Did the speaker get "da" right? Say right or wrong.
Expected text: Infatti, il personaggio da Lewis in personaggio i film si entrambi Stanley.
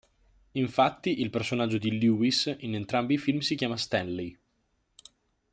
wrong